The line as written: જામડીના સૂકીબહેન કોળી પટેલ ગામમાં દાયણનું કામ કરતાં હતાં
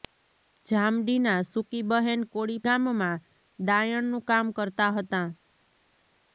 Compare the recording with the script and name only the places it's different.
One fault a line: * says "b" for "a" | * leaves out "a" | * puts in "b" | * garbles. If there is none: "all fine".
* leaves out "પટેલ"